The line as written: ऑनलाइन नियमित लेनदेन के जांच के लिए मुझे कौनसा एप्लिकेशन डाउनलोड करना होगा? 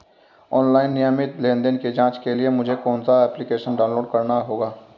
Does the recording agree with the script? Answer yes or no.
no